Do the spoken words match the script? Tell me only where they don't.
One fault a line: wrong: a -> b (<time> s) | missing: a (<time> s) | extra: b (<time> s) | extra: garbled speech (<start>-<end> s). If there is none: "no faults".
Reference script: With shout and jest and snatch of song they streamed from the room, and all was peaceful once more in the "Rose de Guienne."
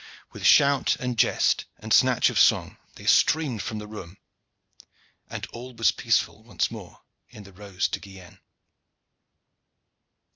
no faults